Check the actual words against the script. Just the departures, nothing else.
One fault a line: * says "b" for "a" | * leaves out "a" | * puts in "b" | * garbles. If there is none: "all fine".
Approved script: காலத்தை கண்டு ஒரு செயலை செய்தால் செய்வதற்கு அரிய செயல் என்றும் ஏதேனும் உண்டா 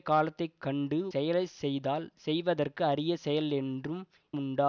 * leaves out "ஒரு"
* leaves out "ஏதேனும்"